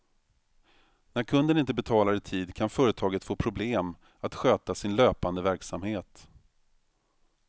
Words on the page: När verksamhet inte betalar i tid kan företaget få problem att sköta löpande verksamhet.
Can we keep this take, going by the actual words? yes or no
no